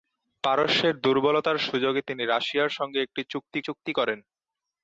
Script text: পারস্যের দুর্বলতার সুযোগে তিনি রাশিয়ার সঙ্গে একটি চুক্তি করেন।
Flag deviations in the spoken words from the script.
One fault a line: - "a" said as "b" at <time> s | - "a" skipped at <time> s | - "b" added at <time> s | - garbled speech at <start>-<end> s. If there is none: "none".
- "চুক্তি" added at 3.6 s